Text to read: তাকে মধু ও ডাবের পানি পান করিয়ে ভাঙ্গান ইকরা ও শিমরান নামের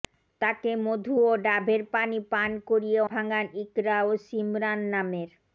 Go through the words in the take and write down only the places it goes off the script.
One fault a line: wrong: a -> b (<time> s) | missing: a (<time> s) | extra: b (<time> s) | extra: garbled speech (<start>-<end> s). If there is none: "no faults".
no faults